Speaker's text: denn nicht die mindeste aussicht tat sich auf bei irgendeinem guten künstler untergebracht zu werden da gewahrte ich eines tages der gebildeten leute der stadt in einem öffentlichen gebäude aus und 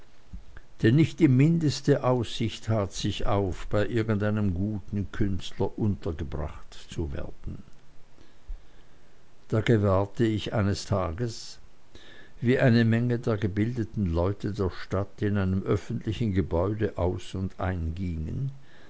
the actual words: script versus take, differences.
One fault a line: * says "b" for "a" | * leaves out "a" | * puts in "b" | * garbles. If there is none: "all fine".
* puts in "wie eine menge"